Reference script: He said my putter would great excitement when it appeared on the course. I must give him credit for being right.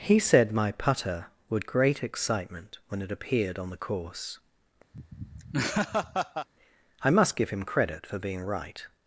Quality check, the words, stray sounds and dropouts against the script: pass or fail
fail